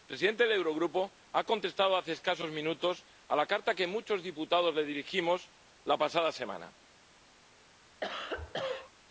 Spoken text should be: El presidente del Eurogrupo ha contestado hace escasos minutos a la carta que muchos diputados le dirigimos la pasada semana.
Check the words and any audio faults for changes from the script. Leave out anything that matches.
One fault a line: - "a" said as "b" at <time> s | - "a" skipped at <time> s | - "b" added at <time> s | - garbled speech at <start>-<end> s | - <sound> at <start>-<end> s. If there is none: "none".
- cough at 8.0-8.9 s